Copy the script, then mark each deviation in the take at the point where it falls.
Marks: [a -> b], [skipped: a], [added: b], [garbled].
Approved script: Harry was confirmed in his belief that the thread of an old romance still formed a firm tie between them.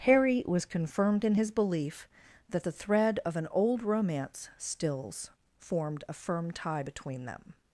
Harry was confirmed in his belief that the thread of an old romance [still -> stills] formed a firm tie between them.